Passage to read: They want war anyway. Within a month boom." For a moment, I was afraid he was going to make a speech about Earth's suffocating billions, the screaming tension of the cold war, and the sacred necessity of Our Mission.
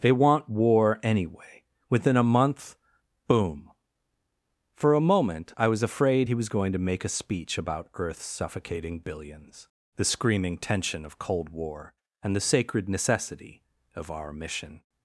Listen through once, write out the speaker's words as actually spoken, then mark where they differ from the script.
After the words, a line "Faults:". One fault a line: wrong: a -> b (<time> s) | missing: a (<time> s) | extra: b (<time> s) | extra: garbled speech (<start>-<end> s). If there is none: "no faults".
They want war anyway. Within a month boom." For a moment, I was afraid he was going to make a speech about Earth's suffocating billions, the screaming tension of cold war, and the sacred necessity of Our Mission.
Faults:
missing: the (11.2 s)